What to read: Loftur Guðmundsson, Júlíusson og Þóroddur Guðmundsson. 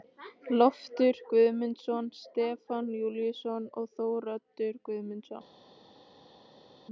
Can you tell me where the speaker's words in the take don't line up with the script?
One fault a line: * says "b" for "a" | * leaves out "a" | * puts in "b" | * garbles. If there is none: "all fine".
* puts in "Stefán"